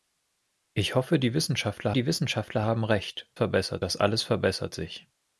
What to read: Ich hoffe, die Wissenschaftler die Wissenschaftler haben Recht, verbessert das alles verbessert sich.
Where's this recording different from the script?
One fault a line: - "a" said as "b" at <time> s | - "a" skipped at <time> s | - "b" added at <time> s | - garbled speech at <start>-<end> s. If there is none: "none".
none